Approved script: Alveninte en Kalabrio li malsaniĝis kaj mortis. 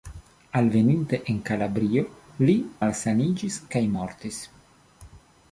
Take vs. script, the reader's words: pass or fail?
pass